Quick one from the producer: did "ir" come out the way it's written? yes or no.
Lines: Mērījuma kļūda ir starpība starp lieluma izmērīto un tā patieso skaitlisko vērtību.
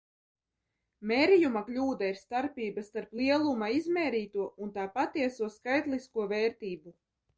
yes